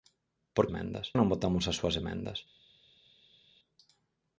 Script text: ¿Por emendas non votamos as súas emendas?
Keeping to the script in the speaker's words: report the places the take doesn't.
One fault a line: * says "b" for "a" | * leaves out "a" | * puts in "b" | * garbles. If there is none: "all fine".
all fine